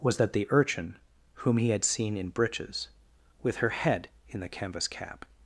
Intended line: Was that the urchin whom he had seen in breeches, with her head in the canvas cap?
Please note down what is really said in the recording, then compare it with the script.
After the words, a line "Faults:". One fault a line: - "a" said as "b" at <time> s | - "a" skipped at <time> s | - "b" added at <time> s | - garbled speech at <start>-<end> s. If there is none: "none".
Was that the urchin whom he had seen in breeches, with her head in the canvas cap?
Faults:
none